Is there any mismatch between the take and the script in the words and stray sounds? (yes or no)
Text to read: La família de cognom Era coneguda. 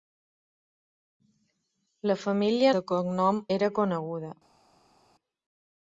no